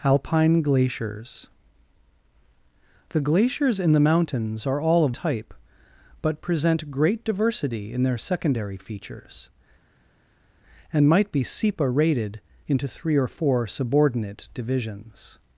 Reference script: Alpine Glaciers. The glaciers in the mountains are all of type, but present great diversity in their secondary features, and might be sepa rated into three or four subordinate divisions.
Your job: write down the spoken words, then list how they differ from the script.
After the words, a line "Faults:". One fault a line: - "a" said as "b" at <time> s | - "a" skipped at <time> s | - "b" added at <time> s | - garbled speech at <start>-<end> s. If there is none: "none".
Alpine Glaciers. The glaciers in the mountains are all of type, but present great diversity in their secondary features, and might be sepa rated into three or four subordinate divisions.
Faults:
none